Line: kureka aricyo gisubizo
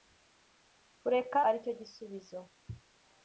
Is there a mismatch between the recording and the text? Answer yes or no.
no